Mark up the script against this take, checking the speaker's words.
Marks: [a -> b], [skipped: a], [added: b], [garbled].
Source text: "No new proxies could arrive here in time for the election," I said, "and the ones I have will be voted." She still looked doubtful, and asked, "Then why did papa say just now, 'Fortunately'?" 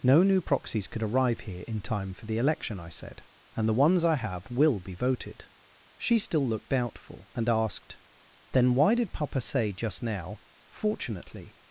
"No new proxies could arrive here in time for the election," I said, "and the ones I have will be voted." She still looked doubtful, and asked, "Then why did papa say just now, 'Fortunately'?"